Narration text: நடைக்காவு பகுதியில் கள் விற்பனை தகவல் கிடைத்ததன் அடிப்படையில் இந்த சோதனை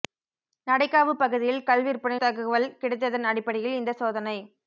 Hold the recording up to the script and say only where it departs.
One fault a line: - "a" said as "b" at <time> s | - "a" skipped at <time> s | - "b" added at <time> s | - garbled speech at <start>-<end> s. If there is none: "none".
none